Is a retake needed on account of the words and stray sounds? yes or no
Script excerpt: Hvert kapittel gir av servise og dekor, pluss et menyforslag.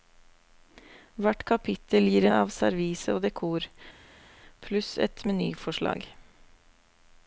no